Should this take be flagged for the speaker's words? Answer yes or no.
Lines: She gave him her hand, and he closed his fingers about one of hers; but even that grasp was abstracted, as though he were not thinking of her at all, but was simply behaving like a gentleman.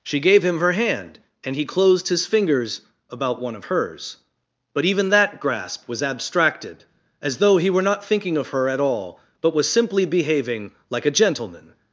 no